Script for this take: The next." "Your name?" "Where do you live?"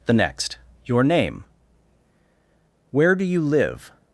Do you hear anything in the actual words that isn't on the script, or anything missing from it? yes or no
no